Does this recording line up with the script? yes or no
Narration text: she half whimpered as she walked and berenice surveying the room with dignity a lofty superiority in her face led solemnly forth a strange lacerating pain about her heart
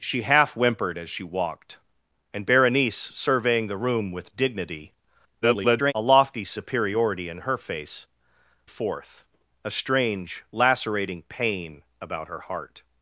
no